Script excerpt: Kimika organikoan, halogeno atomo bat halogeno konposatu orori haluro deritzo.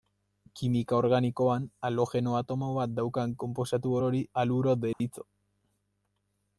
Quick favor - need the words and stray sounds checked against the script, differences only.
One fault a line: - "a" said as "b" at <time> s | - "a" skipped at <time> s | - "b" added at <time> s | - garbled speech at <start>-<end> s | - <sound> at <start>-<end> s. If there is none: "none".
- "halogeno" said as "daukan" at 3.0 s
- dropout at 4.9-5.0 s